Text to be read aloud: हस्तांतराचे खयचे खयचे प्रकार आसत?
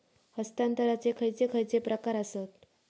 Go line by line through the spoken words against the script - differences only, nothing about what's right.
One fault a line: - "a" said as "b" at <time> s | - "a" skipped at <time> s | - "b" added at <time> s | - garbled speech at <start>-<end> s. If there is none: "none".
none